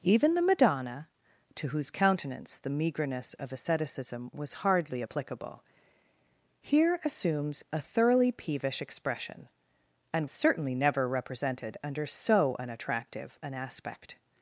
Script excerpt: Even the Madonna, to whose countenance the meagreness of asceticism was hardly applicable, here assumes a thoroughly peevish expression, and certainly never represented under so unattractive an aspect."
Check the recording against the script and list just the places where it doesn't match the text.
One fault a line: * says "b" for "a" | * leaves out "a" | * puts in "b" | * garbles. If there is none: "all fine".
all fine